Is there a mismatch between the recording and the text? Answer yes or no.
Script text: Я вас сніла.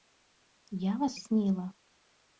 no